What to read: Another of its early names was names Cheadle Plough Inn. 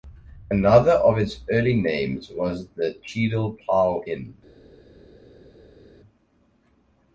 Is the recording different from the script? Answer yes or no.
yes